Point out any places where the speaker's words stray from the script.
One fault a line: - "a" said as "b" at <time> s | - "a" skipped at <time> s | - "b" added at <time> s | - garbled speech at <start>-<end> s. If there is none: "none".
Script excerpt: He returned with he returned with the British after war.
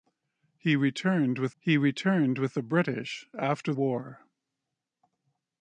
none